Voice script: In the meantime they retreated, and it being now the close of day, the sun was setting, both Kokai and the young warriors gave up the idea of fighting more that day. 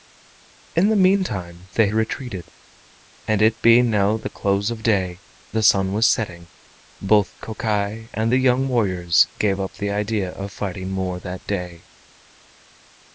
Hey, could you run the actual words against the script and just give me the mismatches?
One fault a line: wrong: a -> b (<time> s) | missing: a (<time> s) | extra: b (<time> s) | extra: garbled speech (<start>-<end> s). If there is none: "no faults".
no faults